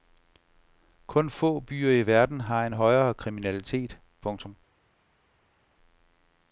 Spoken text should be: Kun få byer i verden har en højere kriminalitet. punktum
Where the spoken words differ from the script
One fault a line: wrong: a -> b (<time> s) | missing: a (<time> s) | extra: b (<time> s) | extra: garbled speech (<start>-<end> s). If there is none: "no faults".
no faults